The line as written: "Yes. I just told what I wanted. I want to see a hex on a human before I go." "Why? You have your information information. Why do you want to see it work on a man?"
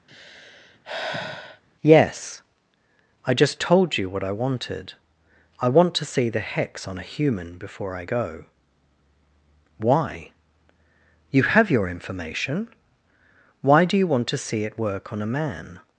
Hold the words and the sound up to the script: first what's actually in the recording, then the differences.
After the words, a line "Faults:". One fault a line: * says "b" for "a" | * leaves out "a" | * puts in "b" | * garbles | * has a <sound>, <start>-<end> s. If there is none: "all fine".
"Yes. I just told you what I wanted. I want to see the hex on a human before I go." "Why? You have your information. Why do you want to see it work on a man?"
Faults:
* has a sigh, 0.1-1.6 s
* puts in "you"
* says "the" for "a"
* leaves out "information"